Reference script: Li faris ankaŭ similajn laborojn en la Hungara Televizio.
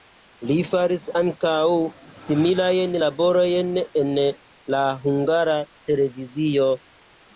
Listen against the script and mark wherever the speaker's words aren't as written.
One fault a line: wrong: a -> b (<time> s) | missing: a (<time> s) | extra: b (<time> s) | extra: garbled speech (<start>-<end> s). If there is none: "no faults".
no faults